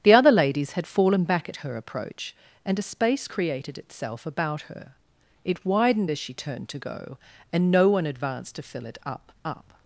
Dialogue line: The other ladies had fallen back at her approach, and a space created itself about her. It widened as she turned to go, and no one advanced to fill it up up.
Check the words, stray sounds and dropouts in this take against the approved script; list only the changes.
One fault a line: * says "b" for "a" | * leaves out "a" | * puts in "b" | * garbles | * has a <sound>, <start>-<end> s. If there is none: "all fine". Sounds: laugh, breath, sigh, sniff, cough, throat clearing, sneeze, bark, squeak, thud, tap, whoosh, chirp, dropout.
all fine